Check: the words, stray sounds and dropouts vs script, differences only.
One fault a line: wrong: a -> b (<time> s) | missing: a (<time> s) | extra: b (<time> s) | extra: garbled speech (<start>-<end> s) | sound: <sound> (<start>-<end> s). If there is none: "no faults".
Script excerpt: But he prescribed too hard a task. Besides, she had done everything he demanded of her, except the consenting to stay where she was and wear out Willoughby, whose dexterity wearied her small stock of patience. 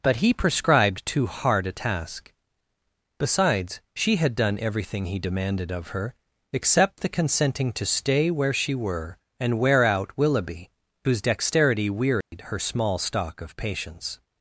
wrong: was -> were (8.7 s)
sound: dropout (12.2-12.3 s)